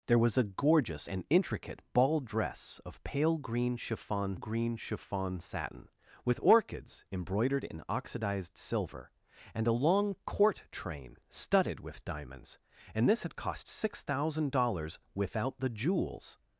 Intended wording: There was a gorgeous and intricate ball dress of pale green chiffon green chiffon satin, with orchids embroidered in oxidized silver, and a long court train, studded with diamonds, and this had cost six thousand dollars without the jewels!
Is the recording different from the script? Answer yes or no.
no